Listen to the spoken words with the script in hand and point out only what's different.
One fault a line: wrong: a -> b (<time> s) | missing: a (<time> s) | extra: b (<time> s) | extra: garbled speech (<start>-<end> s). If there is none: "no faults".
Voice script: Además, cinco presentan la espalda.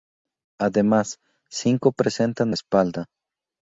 no faults